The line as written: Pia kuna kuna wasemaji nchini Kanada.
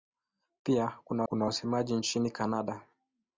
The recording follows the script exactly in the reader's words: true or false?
true